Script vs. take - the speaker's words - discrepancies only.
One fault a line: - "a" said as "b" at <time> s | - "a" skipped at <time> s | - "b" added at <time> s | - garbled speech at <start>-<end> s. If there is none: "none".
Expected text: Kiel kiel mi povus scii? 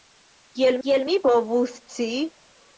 none